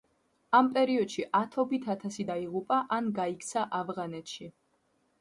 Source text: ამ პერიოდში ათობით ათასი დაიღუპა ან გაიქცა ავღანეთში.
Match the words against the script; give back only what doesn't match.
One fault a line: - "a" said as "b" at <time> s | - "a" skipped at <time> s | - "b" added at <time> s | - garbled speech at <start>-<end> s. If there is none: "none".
none